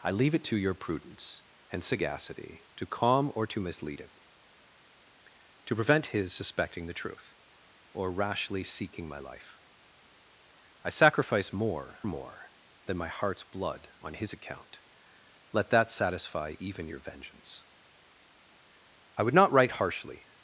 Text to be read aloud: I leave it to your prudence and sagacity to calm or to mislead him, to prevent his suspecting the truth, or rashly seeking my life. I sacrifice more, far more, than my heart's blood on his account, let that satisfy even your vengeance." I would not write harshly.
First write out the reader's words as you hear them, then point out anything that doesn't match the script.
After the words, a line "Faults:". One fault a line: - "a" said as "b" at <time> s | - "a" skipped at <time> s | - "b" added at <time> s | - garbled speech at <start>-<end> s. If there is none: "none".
I leave it to your prudence and sagacity to calm or to mislead him, to prevent his suspecting the truth, or rashly seeking my life. I sacrifice more, more, than my heart's blood on his account, let that satisfy even your vengeance." I would not write harshly.
Faults:
- "far" skipped at 12.0 s